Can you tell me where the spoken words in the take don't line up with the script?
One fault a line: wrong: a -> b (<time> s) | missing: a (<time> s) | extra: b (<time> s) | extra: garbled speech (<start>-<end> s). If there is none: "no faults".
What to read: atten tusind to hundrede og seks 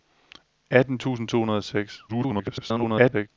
extra: garbled speech (2.1-3.3 s)